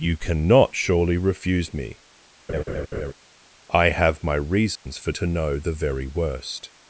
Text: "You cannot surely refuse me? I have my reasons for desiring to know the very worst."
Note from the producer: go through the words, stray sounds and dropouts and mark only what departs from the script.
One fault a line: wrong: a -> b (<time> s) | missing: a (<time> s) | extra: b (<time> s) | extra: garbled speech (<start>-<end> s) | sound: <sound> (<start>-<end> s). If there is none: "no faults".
sound: laugh (2.5-3.1 s)
sound: dropout (4.8-4.9 s)
missing: desiring (5.1 s)